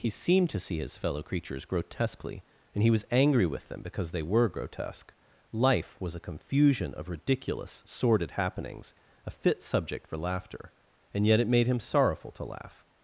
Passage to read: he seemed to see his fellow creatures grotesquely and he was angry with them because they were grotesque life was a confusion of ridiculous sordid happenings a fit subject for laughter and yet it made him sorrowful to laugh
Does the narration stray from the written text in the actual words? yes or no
no